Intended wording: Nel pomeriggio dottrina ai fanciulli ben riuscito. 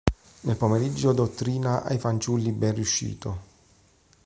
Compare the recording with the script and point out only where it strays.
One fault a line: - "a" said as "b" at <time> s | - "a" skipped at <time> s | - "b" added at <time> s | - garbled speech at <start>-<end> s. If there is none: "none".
none